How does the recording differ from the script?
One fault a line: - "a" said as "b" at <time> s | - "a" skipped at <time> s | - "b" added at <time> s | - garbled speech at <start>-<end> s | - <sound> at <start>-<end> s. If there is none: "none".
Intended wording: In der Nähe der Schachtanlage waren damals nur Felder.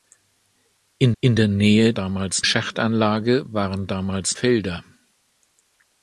- "in" added at 1.2 s
- "der" said as "damals" at 1.9 s
- "nur" skipped at 4.4 s